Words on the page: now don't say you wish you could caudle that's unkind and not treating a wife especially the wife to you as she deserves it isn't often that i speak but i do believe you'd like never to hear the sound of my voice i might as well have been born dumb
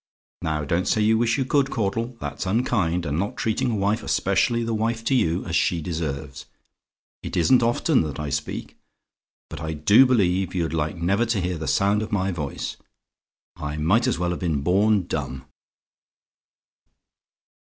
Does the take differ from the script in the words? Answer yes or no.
no